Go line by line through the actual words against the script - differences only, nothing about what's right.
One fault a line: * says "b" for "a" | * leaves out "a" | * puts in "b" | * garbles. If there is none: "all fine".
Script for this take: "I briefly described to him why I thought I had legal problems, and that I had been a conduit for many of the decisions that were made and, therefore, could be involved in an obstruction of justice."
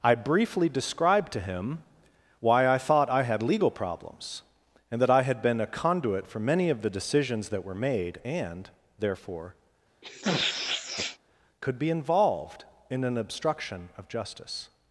all fine